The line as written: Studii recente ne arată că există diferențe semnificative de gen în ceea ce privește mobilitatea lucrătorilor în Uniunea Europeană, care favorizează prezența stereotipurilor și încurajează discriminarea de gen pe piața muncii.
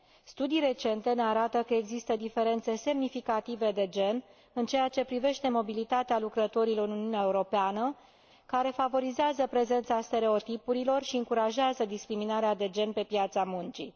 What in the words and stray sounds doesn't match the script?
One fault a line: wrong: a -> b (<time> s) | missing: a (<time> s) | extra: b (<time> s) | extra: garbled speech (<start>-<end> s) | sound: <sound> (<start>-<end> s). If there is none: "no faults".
no faults